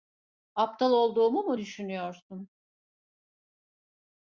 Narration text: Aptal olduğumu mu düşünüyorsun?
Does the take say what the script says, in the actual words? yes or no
yes